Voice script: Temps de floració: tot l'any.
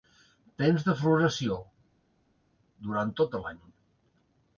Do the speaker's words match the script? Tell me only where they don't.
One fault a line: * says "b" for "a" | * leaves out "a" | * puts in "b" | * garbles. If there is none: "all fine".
* puts in "durant"